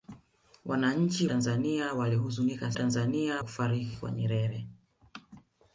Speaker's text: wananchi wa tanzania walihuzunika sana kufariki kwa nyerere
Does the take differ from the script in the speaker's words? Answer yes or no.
yes